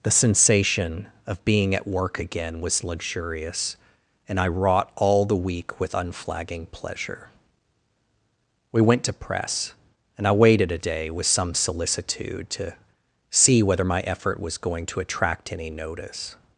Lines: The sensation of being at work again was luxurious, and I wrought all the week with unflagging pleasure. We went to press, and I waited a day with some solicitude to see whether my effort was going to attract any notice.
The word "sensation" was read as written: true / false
true